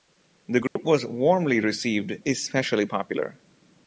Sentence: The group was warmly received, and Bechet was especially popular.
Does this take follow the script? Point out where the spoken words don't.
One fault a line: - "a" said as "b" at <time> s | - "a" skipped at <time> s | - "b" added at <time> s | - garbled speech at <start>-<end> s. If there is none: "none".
- "and Bechet was" skipped at 2.2 s